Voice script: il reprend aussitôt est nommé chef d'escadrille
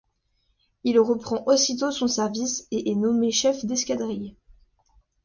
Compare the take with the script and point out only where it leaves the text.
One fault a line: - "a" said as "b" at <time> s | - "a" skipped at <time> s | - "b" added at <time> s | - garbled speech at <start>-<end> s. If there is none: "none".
- "son service et" added at 1.9 s